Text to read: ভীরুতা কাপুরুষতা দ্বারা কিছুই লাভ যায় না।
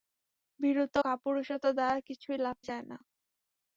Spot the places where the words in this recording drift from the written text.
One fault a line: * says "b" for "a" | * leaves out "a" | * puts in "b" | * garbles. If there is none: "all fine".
all fine